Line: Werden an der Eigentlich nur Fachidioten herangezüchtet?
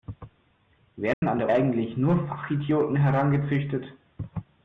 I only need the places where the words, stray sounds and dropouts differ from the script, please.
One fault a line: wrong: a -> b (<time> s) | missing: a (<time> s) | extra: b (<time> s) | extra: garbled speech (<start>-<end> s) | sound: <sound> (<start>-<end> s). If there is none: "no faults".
sound: dropout (1.1-1.2 s)